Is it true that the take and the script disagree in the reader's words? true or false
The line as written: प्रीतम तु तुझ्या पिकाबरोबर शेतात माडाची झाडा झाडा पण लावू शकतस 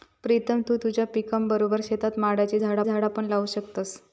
false